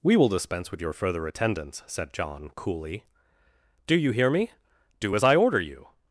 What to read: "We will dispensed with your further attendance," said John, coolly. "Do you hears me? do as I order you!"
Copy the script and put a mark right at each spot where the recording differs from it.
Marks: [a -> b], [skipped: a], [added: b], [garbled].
"We will [dispensed -> dispense] with your further attendance," said John, coolly. "Do you [hears -> hear] me? do as I order you!"